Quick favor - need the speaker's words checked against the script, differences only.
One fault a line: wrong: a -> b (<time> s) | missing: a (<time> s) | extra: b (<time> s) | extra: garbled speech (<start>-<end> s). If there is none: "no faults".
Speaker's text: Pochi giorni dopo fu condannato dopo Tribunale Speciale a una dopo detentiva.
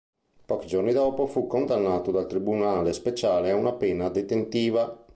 wrong: dopo -> dal (2.1 s)
wrong: dopo -> pena (3.7 s)